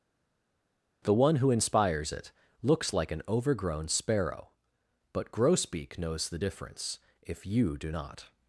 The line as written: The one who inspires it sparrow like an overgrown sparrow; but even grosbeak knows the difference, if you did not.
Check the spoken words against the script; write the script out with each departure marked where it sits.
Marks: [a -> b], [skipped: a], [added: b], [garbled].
The one who inspires it [sparrow -> looks] like an overgrown sparrow; but [skipped: even] grosbeak knows the difference, if you [did -> do] not.